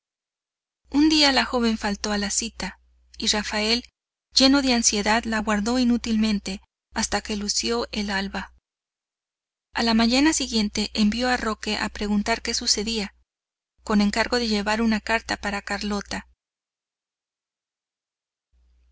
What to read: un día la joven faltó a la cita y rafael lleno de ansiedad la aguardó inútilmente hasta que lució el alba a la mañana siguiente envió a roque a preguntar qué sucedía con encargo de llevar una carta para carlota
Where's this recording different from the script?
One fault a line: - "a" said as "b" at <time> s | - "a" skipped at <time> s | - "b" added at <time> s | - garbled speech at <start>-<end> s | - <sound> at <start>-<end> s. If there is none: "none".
none